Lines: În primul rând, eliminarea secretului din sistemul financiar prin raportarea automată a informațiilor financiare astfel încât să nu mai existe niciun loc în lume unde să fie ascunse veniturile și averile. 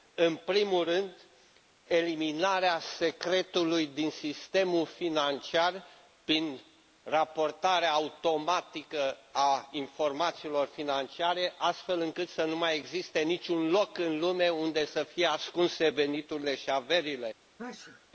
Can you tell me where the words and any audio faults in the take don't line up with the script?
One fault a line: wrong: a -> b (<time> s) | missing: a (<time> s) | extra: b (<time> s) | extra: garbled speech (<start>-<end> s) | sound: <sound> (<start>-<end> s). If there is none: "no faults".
sound: sneeze (17.6-18.1 s)